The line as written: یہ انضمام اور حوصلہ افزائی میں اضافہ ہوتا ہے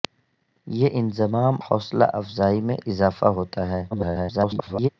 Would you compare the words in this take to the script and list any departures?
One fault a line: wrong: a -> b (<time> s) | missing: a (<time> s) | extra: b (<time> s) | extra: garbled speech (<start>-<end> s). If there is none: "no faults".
missing: اور (1.5 s)
extra: garbled speech (3.9-4.9 s)